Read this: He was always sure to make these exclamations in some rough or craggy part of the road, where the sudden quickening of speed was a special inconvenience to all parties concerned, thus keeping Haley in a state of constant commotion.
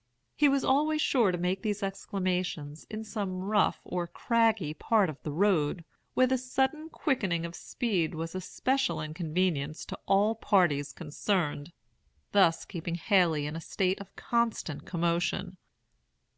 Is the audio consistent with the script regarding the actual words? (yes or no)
yes